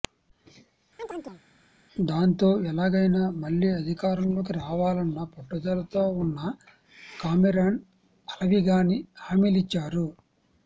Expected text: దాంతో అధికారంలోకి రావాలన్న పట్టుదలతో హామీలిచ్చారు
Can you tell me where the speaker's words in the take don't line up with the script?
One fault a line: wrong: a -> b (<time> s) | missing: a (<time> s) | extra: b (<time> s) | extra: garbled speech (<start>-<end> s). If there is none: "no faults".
extra: ఎలాగైనా మళ్లీ (2.7 s)
extra: ఉన్న కామెరాన్ అలవిగాని (6.2 s)